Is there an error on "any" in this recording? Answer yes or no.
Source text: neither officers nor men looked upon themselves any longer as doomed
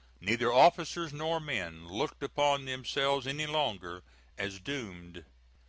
no